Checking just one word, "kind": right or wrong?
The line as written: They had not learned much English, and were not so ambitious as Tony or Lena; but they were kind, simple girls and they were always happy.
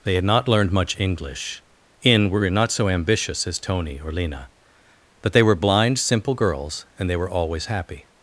wrong